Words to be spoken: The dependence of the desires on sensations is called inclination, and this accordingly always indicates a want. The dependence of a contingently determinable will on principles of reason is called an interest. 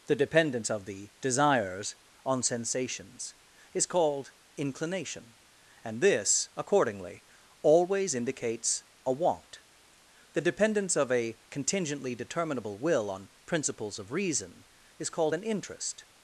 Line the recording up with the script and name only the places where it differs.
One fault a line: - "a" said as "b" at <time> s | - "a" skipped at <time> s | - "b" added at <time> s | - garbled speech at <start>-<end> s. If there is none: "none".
none